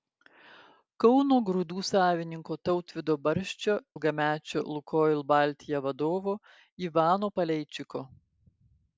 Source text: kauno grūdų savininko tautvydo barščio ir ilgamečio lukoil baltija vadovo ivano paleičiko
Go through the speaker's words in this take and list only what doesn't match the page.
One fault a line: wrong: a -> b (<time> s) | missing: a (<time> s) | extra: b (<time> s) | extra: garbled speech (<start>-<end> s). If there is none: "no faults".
missing: ir (3.8 s)